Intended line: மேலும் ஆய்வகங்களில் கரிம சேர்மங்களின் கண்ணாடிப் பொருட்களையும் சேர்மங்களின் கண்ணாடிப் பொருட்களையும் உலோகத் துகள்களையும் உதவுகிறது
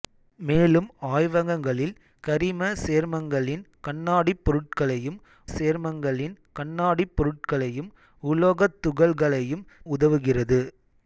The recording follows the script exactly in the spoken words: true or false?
true